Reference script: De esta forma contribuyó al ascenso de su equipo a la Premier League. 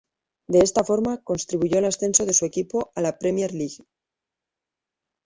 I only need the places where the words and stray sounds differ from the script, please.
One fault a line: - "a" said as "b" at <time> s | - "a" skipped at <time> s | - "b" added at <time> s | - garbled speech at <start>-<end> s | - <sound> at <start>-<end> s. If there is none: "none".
none